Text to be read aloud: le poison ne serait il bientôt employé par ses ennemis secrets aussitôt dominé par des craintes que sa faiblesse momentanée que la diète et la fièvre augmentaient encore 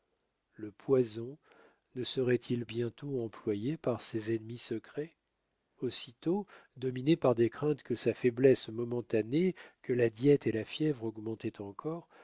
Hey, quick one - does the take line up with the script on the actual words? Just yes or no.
yes